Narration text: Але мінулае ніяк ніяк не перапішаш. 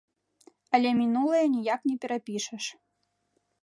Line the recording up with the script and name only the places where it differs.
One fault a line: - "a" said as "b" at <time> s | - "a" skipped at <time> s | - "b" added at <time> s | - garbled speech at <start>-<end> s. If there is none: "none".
- "ніяк" skipped at 1.8 s